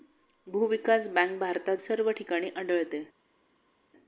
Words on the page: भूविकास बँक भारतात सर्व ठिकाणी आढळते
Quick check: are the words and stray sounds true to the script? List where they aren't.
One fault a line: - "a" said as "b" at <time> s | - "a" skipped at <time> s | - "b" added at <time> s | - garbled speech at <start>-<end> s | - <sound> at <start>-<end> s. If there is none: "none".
none